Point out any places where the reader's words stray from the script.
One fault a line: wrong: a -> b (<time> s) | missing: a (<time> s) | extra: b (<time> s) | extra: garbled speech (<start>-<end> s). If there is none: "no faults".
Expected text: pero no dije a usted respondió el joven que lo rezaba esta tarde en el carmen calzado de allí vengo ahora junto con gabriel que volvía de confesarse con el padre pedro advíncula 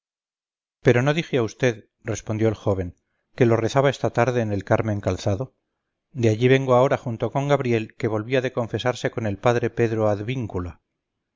no faults